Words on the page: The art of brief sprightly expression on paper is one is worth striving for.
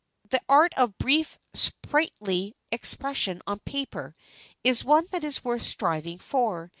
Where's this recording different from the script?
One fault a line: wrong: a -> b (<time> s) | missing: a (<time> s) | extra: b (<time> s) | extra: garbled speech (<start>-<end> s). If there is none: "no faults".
extra: that (5.1 s)